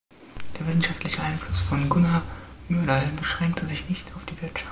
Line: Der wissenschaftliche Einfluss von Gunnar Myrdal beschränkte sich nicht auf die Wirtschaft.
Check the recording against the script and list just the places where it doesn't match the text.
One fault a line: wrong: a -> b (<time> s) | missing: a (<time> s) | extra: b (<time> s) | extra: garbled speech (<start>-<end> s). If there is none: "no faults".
no faults